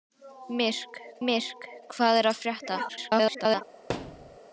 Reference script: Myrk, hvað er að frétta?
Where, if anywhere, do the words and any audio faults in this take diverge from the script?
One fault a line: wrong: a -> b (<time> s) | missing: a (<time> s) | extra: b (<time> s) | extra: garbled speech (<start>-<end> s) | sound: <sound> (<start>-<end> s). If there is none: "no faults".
extra: myrk (1.3 s)
extra: garbled speech (2.9-3.6 s)
sound: thud (3.9-4.4 s)